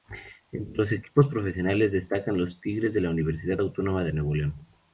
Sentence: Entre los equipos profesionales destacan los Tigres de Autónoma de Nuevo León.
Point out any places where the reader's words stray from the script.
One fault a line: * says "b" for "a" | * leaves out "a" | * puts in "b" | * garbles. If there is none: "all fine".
* puts in "la Universidad"